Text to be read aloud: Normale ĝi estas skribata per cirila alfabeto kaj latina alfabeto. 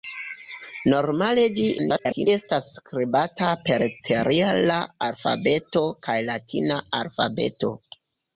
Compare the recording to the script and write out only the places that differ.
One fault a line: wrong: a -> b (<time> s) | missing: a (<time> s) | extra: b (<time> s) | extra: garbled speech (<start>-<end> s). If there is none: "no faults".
extra: garbled speech (1.8-2.3 s)